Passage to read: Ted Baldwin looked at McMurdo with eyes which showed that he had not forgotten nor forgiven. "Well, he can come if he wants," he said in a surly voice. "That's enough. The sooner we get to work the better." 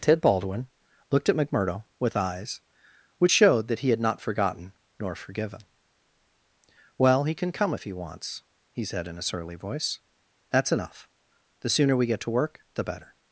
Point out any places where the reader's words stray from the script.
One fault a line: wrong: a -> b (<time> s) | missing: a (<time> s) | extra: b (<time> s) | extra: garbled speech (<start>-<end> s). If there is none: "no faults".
no faults